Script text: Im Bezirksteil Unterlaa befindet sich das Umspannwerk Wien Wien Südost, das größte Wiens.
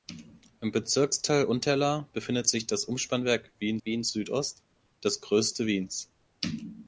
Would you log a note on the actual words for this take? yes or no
no